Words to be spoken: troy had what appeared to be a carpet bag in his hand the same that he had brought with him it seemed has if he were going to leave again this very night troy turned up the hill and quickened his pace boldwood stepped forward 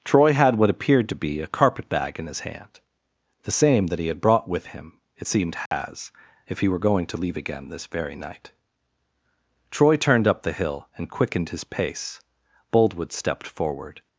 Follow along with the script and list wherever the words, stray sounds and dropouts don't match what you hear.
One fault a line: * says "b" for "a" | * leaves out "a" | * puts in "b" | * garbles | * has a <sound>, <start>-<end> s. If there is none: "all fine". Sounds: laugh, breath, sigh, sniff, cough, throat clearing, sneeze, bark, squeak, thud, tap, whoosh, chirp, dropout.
* has a dropout, 5.7-5.7 s